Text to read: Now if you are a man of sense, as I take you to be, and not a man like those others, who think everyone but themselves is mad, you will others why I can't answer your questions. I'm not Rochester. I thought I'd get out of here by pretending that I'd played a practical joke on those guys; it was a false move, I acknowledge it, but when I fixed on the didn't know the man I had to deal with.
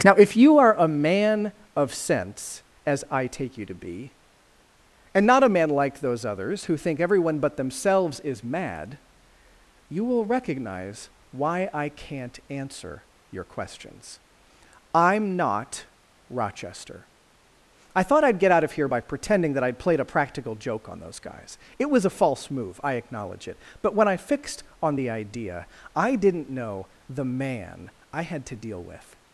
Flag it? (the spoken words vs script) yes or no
yes